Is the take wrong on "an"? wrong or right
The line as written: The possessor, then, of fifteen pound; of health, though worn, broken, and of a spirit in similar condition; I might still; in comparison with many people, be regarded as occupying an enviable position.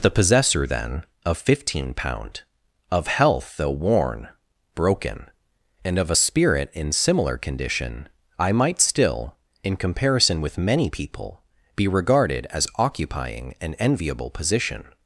right